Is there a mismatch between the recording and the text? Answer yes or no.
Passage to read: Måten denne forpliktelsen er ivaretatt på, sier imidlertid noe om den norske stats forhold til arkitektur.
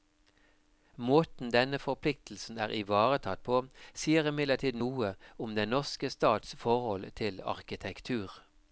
no